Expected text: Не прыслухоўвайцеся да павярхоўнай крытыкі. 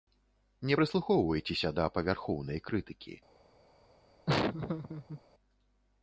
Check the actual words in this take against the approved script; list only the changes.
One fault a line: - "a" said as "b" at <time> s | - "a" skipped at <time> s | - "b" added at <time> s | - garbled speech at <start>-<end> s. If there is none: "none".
none